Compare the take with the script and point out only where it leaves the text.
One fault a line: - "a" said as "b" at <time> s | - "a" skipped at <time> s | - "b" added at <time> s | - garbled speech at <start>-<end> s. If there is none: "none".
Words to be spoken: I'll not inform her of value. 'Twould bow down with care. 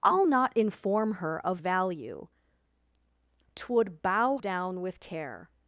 none